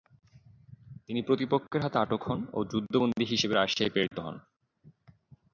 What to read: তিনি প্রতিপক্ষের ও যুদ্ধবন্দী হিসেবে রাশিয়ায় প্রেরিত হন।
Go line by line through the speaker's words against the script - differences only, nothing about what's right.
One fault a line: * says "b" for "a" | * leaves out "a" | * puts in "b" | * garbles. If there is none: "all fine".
* puts in "হাতে আটক হন"